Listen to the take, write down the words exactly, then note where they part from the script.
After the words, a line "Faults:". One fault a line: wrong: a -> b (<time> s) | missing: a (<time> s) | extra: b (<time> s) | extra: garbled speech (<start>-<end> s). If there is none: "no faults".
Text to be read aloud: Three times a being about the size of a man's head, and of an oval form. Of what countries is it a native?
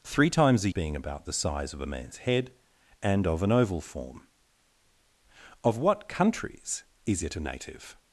Three times a being about the size of a man's head, and of an oval form. Of what countries is it a native?
Faults:
no faults